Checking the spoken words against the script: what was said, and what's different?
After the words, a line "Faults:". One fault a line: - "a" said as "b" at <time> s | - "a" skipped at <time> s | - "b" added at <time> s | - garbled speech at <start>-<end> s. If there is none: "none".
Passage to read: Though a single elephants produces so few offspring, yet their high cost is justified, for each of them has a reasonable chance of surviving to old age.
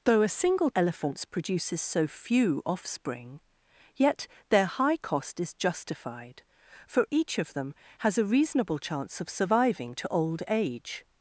Though a single elephants produces so few offspring, yet their high cost is justified, for each of them has a reasonable chance of surviving to old age.
Faults:
none